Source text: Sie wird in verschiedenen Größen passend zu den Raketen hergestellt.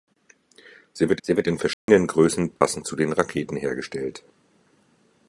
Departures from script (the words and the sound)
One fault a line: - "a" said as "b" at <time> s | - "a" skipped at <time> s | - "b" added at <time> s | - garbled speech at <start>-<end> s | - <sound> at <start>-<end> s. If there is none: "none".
- "sie wird" added at 1.2 s
- dropout at 1.7-1.9 s
- dropout at 2.6-2.6 s